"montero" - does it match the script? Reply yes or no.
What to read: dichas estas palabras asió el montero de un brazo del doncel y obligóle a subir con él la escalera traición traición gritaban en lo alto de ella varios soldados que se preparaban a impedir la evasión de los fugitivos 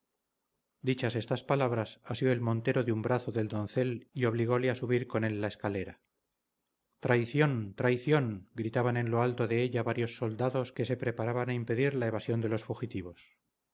yes